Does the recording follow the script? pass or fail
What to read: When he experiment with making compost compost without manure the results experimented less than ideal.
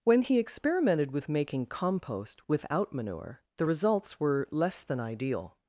fail